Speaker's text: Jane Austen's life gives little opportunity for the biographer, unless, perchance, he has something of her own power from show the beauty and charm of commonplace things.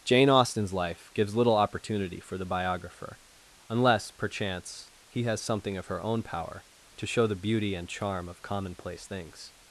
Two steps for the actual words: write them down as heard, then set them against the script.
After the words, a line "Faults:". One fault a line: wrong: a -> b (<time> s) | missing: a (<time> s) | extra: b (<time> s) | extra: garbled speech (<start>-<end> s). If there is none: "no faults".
Jane Austen's life gives little opportunity for the biographer, unless, perchance, he has something of her own power to show the beauty and charm of commonplace things.
Faults:
wrong: from -> to (7.0 s)